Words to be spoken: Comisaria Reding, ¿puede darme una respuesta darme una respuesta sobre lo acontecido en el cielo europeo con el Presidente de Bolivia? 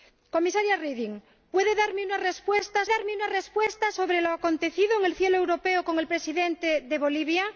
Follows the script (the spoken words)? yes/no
yes